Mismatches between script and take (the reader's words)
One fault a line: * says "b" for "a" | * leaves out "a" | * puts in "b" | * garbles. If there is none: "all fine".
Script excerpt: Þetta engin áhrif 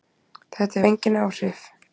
all fine